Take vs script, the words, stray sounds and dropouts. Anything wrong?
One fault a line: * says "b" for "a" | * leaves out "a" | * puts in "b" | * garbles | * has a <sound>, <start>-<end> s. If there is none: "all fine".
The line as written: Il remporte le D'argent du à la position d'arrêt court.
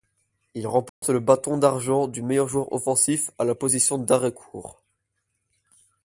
* has a dropout, 0.9-1.0 s
* puts in "Bâton"
* puts in "meilleur joueur offensif"